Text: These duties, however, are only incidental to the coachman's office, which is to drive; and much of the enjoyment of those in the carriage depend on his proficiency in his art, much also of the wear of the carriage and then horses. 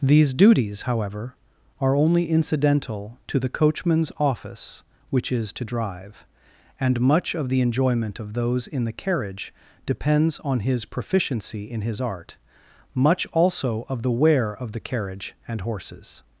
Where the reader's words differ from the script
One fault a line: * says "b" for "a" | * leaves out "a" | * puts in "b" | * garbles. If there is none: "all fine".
* says "depends" for "depend"
* leaves out "then"